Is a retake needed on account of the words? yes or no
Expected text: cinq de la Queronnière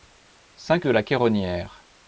no